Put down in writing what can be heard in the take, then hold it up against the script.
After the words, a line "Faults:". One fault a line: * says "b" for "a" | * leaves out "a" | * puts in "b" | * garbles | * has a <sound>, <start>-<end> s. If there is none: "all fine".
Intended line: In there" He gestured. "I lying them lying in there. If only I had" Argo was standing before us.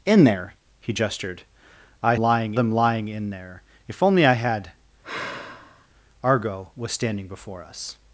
In there" He gestured. "I lying them lying in there. If only I had" Argo was standing before us.
Faults:
* has a sigh, 5.0-5.9 s